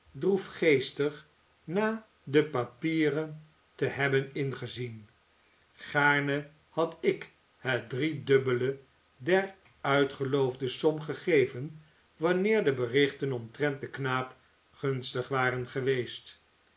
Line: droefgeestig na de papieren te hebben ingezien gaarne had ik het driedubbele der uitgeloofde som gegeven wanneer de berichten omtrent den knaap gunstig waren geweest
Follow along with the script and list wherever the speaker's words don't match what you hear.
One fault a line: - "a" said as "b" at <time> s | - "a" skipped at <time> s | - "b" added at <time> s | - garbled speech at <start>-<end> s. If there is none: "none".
none